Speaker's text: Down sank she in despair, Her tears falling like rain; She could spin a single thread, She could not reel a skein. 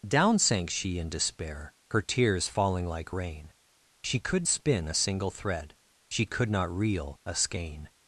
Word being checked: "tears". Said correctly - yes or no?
yes